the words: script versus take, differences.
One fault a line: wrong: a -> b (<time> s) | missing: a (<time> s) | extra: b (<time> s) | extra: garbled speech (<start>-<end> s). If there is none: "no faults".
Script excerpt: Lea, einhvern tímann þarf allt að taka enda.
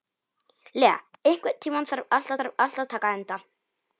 extra: þarf allt (2.4 s)